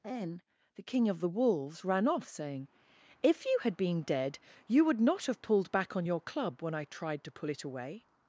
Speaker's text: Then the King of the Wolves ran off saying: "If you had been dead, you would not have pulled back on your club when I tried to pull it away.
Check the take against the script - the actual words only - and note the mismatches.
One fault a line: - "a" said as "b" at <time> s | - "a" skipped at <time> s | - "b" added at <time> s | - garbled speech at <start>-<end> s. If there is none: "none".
none